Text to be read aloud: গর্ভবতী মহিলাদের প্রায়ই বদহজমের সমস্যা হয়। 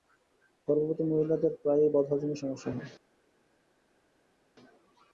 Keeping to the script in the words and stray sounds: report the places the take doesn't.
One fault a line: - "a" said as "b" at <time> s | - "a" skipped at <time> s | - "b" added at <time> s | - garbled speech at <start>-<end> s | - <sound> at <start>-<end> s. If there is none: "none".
none